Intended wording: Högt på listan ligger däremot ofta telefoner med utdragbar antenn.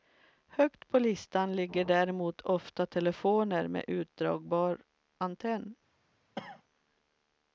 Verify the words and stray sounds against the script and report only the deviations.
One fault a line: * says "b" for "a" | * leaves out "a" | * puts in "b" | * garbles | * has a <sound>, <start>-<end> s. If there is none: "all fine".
* has a cough, 6.4-6.6 s